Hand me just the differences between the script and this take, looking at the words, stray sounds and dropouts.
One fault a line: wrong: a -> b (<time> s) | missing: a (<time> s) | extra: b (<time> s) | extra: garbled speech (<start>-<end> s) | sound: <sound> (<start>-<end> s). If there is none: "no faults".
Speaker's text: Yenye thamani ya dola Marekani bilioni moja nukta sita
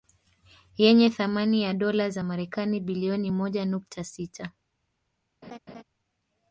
extra: za (2.1 s)
sound: laugh (5.4-5.8 s)